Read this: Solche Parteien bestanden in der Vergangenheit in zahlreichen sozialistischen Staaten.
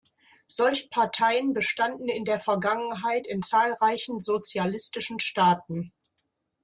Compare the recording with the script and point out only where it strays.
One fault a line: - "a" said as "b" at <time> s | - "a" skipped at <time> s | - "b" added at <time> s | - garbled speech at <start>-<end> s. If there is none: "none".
none